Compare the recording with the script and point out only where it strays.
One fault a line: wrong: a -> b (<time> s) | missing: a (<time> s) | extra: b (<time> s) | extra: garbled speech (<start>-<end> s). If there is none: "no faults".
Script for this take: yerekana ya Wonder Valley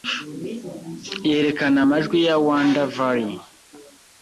extra: amajwi (1.8 s)